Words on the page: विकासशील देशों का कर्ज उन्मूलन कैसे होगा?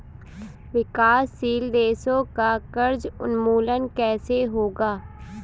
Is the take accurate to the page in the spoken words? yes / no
yes